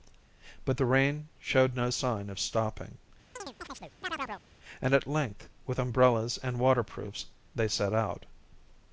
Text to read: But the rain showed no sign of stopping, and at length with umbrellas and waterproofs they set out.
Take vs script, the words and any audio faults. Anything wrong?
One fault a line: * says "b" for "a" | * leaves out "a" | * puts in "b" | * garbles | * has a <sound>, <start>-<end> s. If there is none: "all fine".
* has a chirp, 3.4-4.4 s